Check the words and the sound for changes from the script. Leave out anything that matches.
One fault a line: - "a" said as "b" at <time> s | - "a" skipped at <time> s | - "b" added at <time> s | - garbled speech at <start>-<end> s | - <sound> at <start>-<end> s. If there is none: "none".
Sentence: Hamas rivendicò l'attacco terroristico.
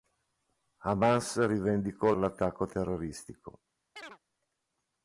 - chirp at 4.0-4.2 s